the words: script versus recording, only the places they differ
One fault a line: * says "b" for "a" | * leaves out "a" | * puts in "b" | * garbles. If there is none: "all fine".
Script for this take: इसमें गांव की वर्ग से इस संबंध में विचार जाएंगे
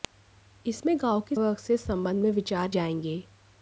all fine